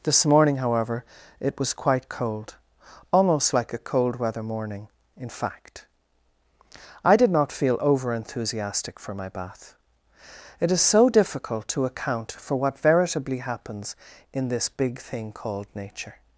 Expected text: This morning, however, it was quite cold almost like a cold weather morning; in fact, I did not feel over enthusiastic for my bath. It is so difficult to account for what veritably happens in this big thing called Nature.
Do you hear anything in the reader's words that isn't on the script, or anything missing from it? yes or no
no